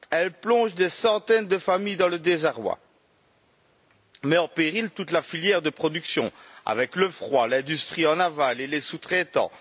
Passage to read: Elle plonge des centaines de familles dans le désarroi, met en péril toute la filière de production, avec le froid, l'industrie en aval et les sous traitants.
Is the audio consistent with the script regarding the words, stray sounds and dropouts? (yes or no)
yes